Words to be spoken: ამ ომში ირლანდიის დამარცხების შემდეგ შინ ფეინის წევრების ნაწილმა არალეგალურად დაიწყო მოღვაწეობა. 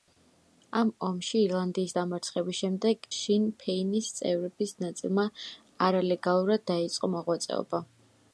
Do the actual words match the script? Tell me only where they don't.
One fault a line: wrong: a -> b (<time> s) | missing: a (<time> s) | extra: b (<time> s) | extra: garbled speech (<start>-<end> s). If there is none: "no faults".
no faults